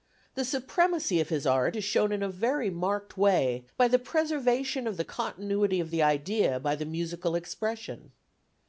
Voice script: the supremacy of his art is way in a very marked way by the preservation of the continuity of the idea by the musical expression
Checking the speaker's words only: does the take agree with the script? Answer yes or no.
no